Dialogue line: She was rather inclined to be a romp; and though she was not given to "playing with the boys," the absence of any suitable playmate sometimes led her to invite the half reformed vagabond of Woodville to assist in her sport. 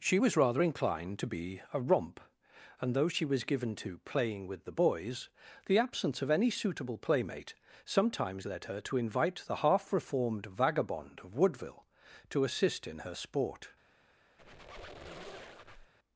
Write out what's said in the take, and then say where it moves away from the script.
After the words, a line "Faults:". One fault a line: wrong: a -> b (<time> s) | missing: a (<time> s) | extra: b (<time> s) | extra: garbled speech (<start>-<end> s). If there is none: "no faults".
She was rather inclined to be a romp; and though she was given to "playing with the boys," the absence of any suitable playmate sometimes led her to invite the half reformed vagabond of Woodville to assist in her sport.
Faults:
missing: not (3.4 s)